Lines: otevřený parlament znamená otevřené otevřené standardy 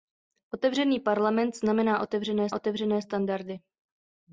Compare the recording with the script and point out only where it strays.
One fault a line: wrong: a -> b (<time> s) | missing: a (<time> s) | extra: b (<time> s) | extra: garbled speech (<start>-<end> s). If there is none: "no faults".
no faults